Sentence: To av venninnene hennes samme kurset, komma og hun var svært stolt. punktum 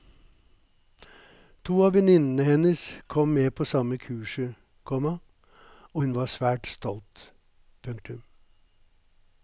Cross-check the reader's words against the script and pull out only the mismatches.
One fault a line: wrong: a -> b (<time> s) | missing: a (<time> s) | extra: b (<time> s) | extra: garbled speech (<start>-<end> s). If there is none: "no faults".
extra: kom med på (3.1 s)